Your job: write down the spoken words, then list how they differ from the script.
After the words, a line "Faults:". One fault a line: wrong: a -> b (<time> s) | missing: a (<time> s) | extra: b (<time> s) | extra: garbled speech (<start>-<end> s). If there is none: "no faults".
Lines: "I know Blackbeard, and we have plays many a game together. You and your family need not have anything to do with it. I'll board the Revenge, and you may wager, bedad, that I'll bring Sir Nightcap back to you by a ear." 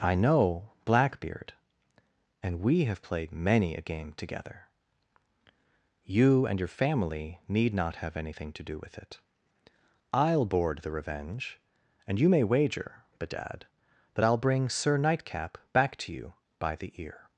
"I know Blackbeard, and we have played many a game together. You and your family need not have anything to do with it. I'll board the Revenge, and you may wager, bedad, that I'll bring Sir Nightcap back to you by the ear."
Faults:
wrong: plays -> played (3.0 s)
wrong: a -> the (16.8 s)